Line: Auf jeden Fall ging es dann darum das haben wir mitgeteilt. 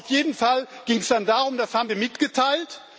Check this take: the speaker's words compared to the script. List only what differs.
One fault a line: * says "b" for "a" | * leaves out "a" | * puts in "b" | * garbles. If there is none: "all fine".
all fine